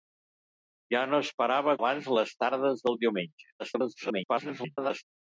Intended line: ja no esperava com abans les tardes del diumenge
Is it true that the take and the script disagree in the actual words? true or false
true